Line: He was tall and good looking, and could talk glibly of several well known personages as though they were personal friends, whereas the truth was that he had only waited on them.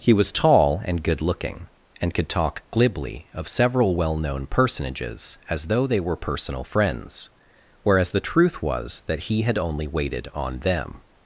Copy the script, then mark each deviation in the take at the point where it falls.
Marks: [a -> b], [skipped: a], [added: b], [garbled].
He was tall and good looking, and could talk glibly of several well known personages as though they were personal friends, whereas the truth was that he had only waited on them.